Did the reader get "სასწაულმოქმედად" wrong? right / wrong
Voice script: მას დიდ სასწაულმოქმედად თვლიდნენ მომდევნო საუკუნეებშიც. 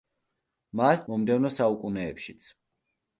wrong